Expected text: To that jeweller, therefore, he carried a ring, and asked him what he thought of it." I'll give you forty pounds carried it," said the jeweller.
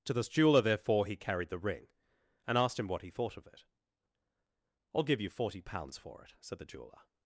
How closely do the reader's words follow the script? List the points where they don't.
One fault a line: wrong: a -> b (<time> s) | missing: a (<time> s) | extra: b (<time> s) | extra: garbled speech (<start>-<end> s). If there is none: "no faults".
wrong: that -> this (0.1 s)
wrong: a -> the (1.5 s)
wrong: carried -> for (6.0 s)